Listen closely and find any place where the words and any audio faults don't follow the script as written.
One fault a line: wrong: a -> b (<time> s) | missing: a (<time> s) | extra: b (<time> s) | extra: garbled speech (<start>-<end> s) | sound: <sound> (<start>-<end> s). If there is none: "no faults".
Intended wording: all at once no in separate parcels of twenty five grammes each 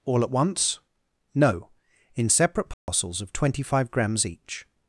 sound: dropout (2.7-2.9 s)